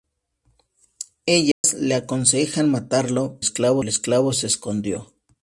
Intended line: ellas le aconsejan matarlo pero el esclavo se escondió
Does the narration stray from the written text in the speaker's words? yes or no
yes